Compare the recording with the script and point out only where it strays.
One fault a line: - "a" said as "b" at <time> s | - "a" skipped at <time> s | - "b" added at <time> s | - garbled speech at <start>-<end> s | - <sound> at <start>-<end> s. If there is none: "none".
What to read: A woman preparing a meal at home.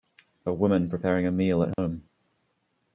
- dropout at 1.7-1.8 s